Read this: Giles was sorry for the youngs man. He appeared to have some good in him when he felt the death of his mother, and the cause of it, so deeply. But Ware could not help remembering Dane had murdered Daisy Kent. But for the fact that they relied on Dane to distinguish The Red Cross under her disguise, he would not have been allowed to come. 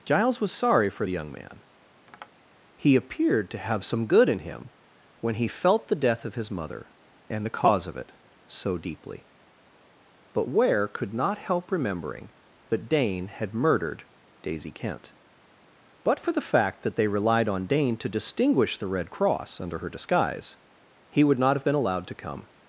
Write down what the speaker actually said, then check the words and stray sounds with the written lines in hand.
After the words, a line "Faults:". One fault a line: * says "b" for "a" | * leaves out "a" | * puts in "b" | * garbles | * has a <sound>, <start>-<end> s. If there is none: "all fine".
Giles was sorry for the young man. He appeared to have some good in him when he felt the death of his mother, and the cause of it, so deeply. But Ware could not help remembering that Dane had murdered Daisy Kent. But for the fact that they relied on Dane to distinguish The Red Cross under her disguise, he would not have been allowed to come.
Faults:
* says "young" for "youngs"
* has a tap, 2.1-2.3 s
* puts in "that"